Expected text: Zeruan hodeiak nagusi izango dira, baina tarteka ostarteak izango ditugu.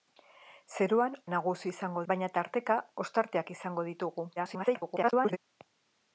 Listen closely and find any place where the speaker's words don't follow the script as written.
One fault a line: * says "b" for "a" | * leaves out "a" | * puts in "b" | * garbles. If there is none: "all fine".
* leaves out "hodeiak"
* leaves out "dira"
* garbles